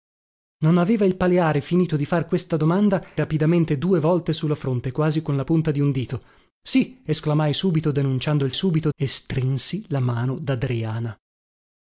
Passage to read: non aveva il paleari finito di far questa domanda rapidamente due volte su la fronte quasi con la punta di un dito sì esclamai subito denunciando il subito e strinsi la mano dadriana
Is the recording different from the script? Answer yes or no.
no